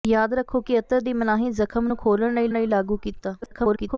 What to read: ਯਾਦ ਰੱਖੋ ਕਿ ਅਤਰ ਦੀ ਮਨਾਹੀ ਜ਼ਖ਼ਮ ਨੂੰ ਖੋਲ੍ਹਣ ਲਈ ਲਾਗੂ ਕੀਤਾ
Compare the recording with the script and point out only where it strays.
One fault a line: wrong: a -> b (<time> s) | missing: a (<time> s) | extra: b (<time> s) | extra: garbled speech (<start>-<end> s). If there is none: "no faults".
extra: ਲਈ (2.5 s)
extra: garbled speech (3.4-4.0 s)